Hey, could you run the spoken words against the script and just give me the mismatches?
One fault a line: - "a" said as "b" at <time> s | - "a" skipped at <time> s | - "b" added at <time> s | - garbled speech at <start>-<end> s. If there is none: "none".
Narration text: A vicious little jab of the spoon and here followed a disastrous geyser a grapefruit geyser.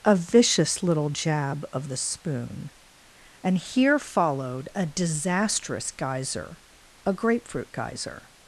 none